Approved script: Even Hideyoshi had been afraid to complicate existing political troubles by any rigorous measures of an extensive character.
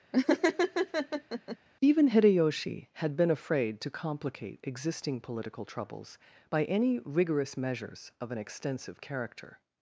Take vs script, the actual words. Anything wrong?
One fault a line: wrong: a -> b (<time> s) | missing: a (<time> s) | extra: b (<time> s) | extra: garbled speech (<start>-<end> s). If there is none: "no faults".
no faults